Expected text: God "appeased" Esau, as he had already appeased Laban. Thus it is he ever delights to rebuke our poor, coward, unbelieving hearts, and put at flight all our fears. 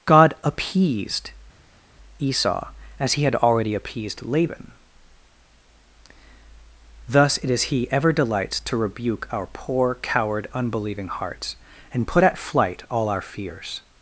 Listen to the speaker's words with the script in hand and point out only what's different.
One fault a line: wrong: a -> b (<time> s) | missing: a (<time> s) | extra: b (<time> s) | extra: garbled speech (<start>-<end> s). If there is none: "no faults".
no faults